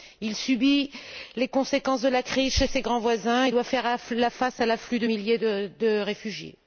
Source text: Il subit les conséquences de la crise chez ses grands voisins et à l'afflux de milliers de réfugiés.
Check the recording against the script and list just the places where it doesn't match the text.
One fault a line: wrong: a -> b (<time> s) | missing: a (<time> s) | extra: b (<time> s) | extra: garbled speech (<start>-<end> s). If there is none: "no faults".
extra: doit faire face (3.5 s)